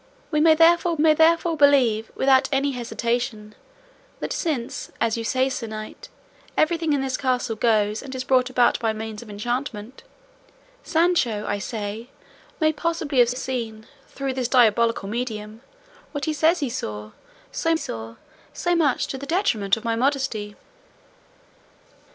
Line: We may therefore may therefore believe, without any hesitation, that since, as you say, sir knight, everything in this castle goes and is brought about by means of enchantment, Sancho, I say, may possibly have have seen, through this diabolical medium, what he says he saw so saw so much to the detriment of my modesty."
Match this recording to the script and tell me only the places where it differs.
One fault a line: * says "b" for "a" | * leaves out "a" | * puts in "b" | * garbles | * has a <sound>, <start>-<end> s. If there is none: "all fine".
all fine